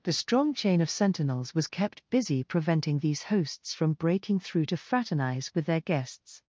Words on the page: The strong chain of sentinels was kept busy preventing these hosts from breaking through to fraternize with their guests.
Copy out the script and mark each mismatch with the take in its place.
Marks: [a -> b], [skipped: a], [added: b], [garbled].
The strong chain of sentinels was kept busy preventing these hosts from breaking through to fraternize with their guests.